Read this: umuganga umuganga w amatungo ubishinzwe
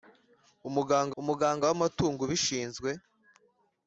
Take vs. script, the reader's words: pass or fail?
pass